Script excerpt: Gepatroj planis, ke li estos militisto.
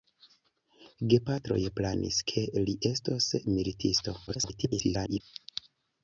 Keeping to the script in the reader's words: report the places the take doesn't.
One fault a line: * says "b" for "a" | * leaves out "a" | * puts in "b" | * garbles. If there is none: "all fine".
* garbles